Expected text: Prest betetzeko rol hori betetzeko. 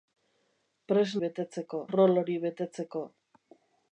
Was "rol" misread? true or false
false